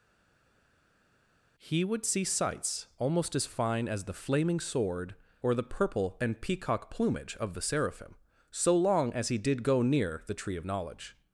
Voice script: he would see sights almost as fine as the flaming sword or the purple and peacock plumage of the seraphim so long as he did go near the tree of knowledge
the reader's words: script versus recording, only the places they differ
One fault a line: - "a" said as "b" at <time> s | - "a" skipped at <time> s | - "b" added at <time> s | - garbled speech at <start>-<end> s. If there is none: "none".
none